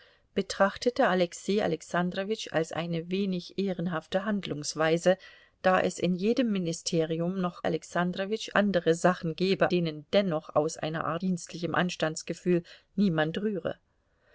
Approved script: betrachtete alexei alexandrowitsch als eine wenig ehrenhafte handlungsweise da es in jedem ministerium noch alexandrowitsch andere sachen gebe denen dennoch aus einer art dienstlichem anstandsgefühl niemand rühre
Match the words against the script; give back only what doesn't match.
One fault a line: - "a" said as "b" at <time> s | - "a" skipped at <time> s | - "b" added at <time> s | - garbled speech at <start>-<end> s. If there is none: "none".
none